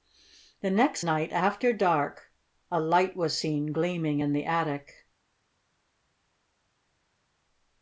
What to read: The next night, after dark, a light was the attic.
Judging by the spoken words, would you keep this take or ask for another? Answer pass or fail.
fail